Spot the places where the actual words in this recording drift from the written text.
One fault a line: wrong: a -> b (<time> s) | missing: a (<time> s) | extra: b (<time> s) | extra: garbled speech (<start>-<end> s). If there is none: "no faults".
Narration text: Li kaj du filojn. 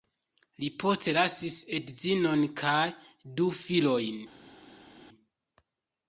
extra: postlasis edzinon (0.8 s)